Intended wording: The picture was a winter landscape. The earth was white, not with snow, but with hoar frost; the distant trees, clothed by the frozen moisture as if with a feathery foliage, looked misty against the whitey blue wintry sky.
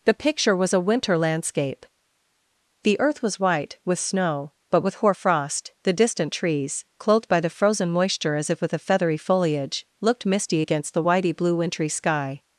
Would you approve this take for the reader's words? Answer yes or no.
no